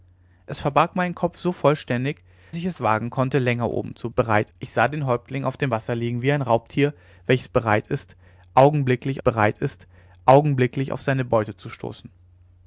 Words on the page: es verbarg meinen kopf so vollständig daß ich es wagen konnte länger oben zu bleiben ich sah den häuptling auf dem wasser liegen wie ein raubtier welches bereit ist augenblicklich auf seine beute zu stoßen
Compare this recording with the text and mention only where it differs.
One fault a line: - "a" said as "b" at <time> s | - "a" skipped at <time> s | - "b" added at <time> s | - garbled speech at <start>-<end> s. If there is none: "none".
- "daß" skipped at 2.2 s
- "bleiben" said as "bereit" at 4.1 s
- "bereit ist augenblicklich" added at 9.2 s